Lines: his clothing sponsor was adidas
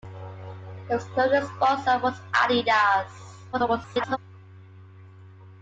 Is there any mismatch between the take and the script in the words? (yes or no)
yes